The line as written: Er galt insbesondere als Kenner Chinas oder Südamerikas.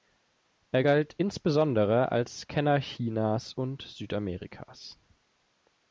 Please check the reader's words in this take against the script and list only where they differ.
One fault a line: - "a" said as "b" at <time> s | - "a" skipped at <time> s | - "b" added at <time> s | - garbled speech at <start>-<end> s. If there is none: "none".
- "oder" said as "und" at 3.5 s